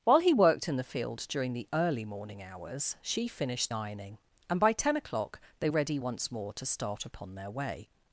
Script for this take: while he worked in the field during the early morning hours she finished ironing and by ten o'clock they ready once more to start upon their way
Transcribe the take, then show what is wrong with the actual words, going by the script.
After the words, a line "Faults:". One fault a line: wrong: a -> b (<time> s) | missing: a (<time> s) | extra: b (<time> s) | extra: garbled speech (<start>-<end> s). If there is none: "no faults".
while he worked in the field during the early morning hours she finished ironing and by ten o'clock they ready once more to start upon their way
Faults:
no faults